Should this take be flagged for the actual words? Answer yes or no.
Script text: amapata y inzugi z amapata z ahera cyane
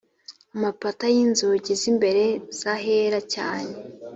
yes